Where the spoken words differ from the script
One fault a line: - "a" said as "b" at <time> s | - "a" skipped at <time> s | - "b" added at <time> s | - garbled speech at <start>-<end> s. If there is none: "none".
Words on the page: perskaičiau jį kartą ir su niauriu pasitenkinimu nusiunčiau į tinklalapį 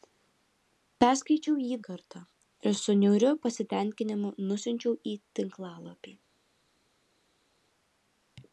none